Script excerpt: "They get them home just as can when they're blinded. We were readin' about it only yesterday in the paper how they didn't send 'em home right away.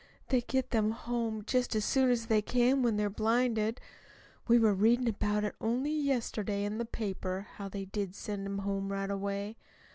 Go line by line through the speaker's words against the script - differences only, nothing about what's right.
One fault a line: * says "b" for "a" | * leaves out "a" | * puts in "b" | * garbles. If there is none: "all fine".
* puts in "soon as they"
* says "did" for "didn't"